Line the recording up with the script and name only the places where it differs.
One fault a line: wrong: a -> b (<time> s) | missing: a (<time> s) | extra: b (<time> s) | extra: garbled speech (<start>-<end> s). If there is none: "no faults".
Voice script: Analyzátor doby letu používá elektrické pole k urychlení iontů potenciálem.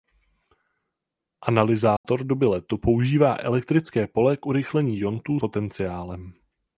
no faults